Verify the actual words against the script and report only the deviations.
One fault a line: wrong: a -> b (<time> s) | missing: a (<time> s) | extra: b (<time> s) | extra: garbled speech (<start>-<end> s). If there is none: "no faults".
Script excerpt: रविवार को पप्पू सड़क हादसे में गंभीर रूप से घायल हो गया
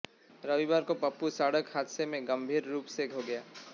missing: घायल (3.1 s)